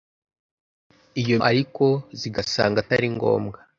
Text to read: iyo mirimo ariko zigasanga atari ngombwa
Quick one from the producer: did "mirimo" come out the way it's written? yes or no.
no